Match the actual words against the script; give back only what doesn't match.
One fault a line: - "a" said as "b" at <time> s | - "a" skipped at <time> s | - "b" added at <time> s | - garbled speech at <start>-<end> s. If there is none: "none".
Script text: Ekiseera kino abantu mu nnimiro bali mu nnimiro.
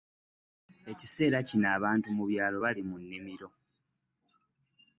- "nnimiro" said as "byalo" at 2.3 s